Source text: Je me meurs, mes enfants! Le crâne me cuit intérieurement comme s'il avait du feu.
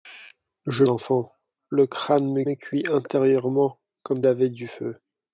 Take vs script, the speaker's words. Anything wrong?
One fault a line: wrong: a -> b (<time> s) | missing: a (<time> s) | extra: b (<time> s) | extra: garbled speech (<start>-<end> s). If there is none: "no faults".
missing: me meurs mes (0.8 s)
extra: me (2.4 s)
missing: s'il (4.3 s)